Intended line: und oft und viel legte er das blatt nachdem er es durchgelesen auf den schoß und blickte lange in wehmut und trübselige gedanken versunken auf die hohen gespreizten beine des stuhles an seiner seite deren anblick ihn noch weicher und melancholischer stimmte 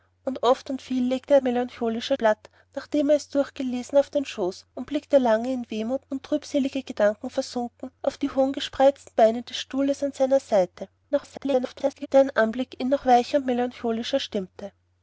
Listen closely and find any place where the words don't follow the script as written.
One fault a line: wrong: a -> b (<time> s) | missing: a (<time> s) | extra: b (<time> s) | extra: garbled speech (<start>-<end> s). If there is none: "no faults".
wrong: das -> melancholischer (1.4 s)
extra: garbled speech (11.1-12.1 s)